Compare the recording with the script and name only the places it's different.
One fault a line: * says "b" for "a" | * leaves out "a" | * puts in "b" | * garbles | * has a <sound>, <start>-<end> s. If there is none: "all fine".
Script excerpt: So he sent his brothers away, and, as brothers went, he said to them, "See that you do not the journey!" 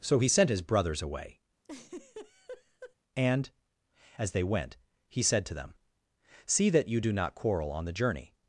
* has a laugh, 1.6-3.0 s
* says "they" for "brothers"
* puts in "quarrel on"